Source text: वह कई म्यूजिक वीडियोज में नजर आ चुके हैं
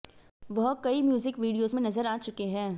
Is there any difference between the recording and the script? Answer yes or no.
no